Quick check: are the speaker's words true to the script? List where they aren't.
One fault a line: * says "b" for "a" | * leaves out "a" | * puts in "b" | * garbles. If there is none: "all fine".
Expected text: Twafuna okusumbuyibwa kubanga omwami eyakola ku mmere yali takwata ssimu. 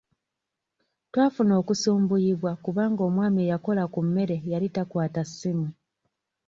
all fine